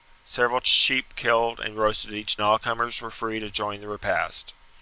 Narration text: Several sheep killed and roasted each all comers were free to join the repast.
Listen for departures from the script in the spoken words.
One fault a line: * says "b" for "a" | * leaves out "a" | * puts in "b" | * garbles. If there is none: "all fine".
all fine